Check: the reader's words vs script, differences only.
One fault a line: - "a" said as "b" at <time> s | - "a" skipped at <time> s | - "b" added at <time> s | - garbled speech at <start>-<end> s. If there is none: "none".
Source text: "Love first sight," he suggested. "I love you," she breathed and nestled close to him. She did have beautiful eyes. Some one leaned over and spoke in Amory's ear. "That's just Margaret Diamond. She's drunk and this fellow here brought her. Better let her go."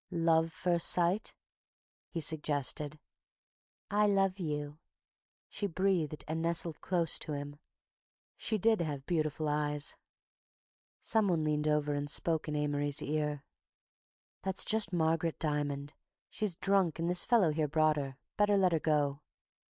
none